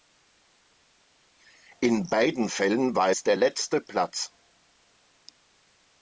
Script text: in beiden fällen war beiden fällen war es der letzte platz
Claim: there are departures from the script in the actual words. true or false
true